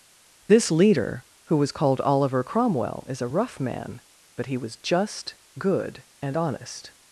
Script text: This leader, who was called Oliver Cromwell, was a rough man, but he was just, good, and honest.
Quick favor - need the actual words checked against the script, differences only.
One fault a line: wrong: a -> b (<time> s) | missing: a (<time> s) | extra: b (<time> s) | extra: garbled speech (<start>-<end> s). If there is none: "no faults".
wrong: was -> is (3.1 s)